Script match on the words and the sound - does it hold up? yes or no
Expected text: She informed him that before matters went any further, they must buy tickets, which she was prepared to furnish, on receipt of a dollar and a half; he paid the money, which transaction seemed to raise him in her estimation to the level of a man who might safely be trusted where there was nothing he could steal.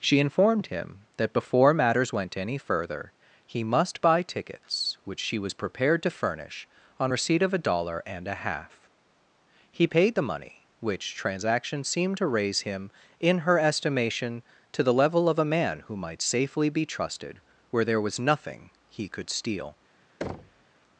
no